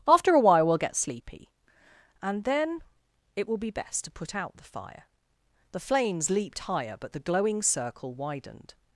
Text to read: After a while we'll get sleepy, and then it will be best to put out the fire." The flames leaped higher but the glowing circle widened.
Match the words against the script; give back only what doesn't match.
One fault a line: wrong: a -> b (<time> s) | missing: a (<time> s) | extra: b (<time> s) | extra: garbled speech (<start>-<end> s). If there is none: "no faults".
no faults